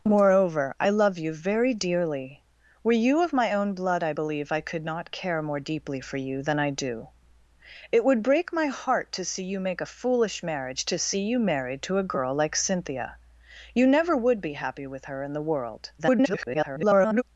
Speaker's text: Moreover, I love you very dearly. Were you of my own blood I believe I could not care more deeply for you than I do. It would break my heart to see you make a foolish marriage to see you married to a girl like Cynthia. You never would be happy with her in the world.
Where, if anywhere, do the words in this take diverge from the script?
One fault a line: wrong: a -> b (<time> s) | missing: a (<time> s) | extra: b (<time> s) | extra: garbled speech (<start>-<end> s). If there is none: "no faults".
extra: garbled speech (16.0-17.2 s)